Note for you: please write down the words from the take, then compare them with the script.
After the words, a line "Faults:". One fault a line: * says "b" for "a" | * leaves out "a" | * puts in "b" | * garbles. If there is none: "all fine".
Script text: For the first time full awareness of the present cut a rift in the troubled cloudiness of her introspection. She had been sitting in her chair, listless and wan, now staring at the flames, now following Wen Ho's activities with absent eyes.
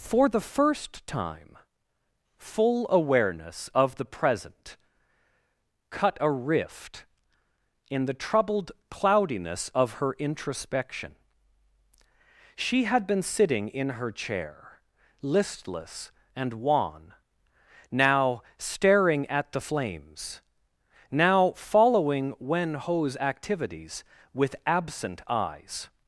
For the first time full awareness of the present cut a rift in the troubled cloudiness of her introspection. She had been sitting in her chair, listless and wan, now staring at the flames, now following Wen Ho's activities with absent eyes.
Faults:
all fine